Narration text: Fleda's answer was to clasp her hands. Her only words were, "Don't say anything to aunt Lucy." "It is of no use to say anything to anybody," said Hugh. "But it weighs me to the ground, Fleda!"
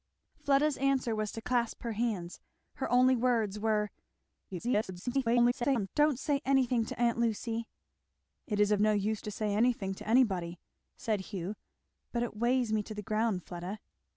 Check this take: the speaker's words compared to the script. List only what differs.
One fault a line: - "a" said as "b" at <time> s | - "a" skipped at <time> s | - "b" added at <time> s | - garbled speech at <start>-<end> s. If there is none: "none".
- garbled speech at 4.5-5.9 s